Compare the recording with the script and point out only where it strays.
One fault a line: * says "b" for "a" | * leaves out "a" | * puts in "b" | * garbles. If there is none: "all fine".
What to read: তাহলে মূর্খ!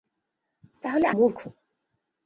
all fine